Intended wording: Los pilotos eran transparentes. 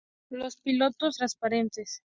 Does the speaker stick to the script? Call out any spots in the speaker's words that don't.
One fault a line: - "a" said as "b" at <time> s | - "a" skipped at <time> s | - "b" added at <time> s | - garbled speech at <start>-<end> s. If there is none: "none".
- "eran" skipped at 1.2 s